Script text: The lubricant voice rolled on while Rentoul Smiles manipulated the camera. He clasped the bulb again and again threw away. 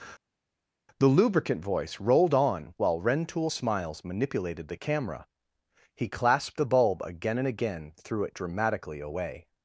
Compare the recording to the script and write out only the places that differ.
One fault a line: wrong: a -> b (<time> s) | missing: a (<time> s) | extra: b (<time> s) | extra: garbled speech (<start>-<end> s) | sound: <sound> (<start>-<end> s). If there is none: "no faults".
extra: it dramatically (8.2 s)